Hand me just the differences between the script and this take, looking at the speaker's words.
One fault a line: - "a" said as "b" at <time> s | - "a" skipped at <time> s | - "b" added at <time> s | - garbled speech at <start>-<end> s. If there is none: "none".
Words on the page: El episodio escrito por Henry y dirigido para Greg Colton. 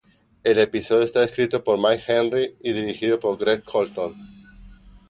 - "está" added at 1.0 s
- "Mike" added at 1.8 s
- "para" said as "por" at 3.2 s